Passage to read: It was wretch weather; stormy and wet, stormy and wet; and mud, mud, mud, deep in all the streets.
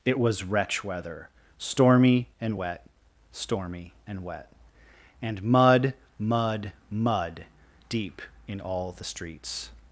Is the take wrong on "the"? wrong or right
right